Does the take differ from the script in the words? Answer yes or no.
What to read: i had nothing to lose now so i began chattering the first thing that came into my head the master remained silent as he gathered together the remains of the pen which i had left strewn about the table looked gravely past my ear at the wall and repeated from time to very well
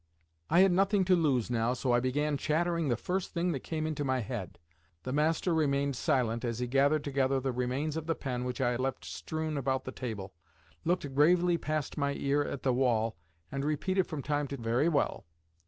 no